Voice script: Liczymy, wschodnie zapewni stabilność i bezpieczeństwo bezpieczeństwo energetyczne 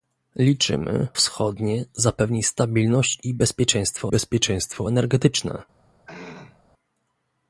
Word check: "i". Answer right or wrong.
right